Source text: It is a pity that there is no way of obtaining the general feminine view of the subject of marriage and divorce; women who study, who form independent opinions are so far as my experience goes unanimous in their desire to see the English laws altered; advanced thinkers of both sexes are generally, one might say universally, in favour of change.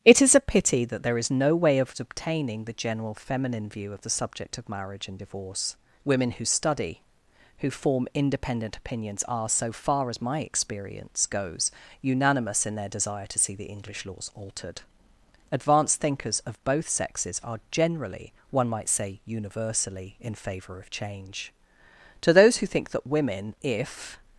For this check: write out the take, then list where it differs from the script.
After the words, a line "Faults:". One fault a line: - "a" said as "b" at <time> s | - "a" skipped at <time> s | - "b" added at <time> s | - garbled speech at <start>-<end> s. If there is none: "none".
It is a pity that there is no way of obtaining the general feminine view of the subject of marriage and divorce; women who study, who form independent opinions are so far as my experience goes unanimous in their desire to see the English laws altered; advanced thinkers of both sexes are generally, one might say universally, in favour of change. To those who think that women, if
Faults:
- "To those who think that women if" added at 22.2 s